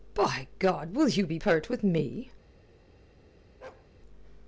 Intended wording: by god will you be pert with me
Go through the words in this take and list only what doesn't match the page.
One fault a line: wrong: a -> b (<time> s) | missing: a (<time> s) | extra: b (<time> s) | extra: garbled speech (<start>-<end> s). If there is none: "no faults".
no faults